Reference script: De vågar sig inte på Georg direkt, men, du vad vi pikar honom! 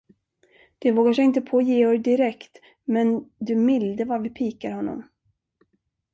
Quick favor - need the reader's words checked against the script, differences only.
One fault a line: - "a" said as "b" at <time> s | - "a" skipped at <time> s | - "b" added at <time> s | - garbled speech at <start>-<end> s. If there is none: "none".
- "milde" added at 3.6 s